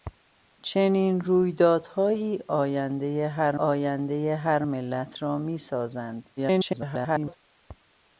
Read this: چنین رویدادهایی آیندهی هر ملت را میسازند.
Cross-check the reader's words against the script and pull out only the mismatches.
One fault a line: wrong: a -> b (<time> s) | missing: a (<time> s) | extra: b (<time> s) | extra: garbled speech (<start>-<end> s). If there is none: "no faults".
extra: آیندهی هر (3.6 s)
extra: garbled speech (6.4-7.4 s)